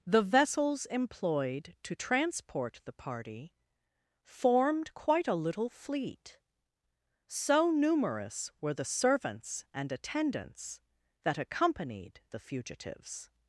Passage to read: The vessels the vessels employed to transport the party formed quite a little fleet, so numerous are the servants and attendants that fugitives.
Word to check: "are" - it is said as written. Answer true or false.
false